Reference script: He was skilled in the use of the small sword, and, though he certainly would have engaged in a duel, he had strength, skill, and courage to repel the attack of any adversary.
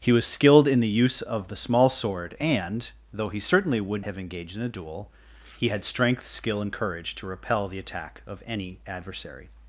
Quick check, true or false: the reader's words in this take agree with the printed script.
true